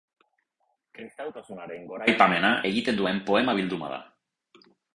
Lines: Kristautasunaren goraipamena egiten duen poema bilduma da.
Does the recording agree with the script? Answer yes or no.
yes